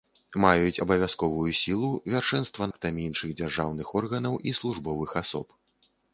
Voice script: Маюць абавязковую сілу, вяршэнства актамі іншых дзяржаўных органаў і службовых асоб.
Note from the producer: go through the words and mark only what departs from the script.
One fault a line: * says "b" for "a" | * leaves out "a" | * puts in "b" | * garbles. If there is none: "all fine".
all fine